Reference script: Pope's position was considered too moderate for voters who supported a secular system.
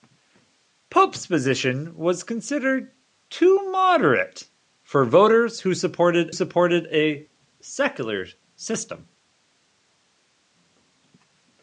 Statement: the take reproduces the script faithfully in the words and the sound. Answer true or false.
false